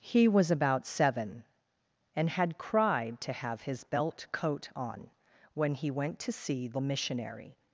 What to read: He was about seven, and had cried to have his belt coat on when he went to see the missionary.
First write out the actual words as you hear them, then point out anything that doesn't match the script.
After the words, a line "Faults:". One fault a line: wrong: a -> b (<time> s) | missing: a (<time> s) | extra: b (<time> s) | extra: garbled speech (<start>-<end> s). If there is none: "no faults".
He was about seven, and had cried to have his belt coat on when he went to see the missionary.
Faults:
no faults